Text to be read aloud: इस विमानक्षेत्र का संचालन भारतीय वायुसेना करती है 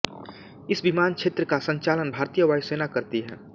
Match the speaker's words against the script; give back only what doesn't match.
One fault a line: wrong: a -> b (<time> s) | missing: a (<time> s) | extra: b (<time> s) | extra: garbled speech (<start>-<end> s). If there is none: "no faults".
no faults